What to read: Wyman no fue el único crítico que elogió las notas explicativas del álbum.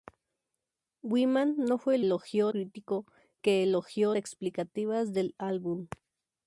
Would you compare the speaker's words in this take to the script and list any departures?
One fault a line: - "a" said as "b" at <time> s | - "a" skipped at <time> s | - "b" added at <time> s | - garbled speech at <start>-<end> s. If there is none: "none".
- "único" said as "elogió" at 2.0 s
- "las notas" skipped at 4.1 s